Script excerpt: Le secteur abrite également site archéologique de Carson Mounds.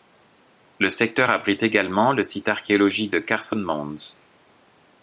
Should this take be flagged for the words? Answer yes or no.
yes